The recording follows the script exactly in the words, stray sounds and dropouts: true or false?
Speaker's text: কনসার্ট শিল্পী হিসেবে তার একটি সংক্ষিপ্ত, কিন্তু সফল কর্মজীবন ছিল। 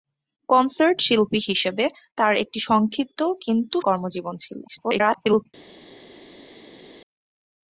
false